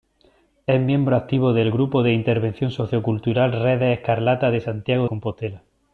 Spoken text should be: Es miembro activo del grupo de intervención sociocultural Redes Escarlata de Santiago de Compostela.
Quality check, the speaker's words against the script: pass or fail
fail